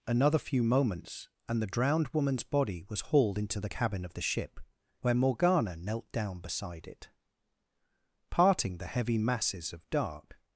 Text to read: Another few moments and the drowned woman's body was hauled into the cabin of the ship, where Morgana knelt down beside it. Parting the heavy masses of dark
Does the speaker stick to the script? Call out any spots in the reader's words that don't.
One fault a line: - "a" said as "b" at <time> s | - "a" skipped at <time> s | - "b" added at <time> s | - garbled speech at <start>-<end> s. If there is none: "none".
none